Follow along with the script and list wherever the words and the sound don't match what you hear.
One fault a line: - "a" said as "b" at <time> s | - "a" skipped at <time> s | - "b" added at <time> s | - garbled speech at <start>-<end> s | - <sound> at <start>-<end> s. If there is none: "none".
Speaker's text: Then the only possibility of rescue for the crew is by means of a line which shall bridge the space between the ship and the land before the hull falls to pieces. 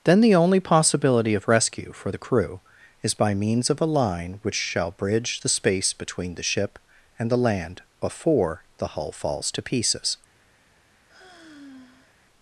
- sigh at 11.1-12.2 s